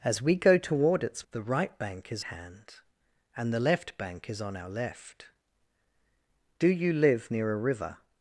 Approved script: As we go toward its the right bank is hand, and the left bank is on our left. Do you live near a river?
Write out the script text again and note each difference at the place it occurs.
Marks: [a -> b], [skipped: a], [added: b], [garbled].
As we go toward its the right bank is hand, and the left bank is on our left. Do you live near a river?